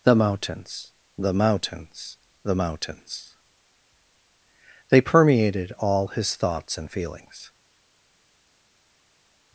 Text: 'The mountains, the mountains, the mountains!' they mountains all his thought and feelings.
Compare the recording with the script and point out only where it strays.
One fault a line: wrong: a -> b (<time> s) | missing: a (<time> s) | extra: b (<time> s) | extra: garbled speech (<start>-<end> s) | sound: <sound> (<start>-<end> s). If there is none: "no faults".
wrong: mountains -> permeated (5.0 s)
wrong: thought -> thoughts (6.3 s)